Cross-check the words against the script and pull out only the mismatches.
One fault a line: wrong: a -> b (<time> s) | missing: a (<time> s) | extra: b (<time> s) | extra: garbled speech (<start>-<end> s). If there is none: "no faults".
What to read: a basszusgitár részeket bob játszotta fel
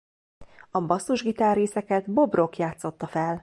extra: rock (2.3 s)